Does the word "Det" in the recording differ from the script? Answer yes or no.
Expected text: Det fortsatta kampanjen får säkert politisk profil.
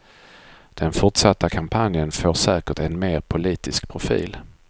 yes